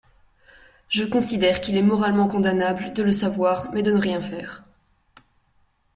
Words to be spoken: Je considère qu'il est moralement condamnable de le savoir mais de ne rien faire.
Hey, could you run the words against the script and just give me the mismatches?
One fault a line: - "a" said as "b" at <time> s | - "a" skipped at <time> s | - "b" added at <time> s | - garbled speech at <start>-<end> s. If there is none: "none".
none